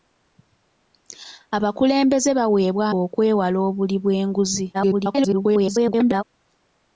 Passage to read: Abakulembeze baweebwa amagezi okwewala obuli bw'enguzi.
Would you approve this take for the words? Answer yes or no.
no